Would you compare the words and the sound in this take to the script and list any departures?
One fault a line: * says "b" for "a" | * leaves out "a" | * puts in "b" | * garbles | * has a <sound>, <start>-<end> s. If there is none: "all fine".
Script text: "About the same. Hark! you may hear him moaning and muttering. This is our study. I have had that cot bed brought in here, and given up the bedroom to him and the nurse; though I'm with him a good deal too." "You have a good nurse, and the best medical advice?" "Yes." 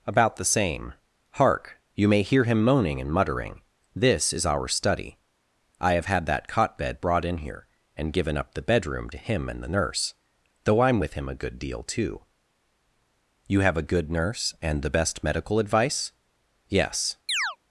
* has a chirp, 17.3-17.6 s